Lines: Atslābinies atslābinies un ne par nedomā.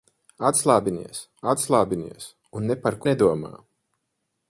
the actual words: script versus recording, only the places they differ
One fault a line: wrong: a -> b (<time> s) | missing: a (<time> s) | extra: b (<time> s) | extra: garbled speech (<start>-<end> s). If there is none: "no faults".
no faults